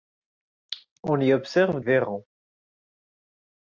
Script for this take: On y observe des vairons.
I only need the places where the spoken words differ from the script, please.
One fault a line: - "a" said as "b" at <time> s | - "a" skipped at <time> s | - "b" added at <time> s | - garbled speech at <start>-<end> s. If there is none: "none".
- "des" skipped at 1.8 s